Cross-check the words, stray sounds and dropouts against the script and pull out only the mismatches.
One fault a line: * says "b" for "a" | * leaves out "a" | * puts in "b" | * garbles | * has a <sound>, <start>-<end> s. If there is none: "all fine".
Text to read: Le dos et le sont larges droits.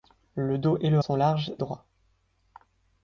all fine